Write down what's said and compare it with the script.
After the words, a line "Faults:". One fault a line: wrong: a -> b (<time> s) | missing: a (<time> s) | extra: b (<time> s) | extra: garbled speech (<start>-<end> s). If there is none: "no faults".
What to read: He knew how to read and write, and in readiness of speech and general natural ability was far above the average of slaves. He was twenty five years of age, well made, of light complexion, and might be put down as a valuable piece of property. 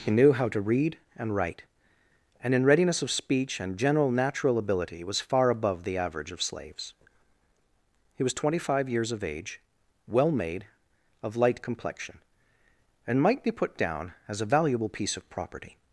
He knew how to read and write, and in readiness of speech and general natural ability was far above the average of slaves. He was twenty five years of age, well made, of light complexion, and might be put down as a valuable piece of property.
Faults:
no faults